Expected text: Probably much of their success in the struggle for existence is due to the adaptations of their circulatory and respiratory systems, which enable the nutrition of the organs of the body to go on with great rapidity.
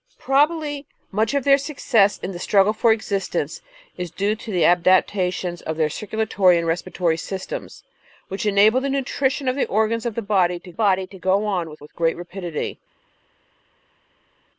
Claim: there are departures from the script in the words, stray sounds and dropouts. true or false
true